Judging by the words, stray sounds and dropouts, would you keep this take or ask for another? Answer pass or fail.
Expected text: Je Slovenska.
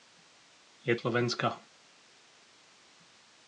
pass